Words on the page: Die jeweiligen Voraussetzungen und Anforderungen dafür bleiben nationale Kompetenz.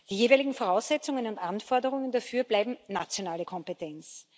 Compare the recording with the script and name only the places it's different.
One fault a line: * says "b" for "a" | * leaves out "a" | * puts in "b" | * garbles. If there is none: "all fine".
all fine